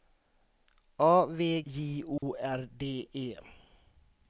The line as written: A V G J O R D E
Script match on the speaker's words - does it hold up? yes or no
no